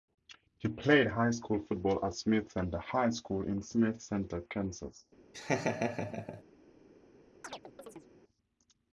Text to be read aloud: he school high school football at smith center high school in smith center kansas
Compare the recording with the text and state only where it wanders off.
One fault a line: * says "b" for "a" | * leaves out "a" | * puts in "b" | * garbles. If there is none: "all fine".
* says "played" for "school"